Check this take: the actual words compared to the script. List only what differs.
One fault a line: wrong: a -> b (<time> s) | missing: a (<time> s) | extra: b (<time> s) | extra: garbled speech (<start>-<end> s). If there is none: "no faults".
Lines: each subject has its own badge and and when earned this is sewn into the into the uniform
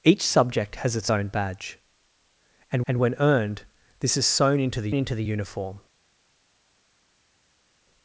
no faults